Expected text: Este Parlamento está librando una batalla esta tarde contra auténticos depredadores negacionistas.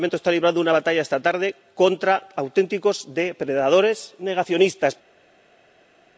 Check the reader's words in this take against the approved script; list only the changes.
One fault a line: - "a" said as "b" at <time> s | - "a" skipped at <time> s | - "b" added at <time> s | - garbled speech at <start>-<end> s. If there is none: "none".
none